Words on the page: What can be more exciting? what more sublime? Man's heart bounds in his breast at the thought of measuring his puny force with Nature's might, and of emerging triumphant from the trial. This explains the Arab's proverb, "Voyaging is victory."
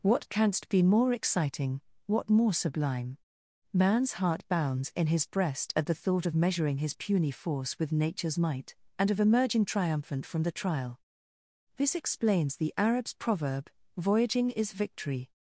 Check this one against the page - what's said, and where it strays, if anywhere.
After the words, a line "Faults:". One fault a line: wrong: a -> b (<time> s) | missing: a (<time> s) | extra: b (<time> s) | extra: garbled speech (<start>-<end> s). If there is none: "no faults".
What canst be more exciting? what more sublime? Man's heart bounds in his breast at the thought of measuring his puny force with Nature's might, and of emerging triumphant from the trial. This explains the Arab's proverb, "Voyaging is victory."
Faults:
wrong: can -> canst (0.3 s)